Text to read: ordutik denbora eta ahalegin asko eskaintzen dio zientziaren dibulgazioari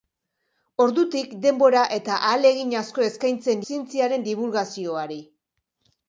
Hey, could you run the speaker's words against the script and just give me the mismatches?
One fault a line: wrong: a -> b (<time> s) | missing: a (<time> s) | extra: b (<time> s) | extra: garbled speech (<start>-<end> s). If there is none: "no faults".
missing: dio (3.6 s)